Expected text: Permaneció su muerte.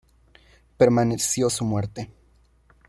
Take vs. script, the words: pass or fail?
pass